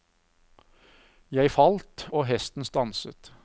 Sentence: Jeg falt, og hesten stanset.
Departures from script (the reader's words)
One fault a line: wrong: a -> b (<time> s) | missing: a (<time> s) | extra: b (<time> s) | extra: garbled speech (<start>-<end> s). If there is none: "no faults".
no faults